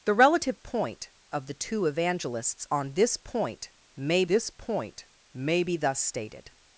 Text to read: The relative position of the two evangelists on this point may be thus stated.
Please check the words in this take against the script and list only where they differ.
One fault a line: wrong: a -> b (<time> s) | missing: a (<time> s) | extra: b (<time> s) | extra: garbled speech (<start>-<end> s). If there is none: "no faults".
wrong: position -> point (0.5 s)
extra: this point may (4.2 s)